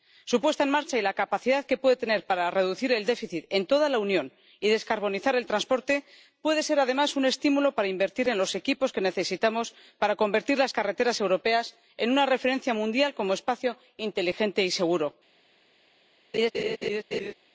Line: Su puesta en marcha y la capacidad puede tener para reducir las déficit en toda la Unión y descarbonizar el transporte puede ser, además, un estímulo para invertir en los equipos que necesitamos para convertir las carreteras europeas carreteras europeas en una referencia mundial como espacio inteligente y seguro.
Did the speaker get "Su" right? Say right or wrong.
right